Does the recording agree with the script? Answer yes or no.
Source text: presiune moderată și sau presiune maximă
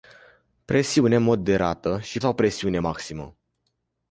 yes